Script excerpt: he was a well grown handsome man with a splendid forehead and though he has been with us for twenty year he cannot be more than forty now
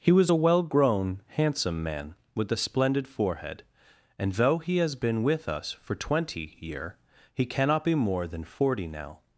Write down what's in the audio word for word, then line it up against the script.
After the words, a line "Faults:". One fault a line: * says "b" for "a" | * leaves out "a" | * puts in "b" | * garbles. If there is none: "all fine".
he was a well grown handsome man with a splendid forehead and though he has been with us for twenty year he cannot be more than forty now
Faults:
all fine